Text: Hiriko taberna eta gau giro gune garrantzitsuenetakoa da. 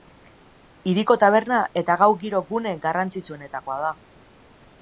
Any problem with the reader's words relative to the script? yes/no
no